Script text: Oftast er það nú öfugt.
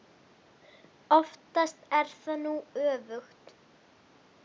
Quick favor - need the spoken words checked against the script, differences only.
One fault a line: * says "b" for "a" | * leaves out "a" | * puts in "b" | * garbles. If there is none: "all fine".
all fine